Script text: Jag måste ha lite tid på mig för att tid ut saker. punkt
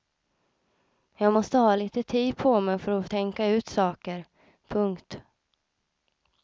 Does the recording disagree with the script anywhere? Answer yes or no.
yes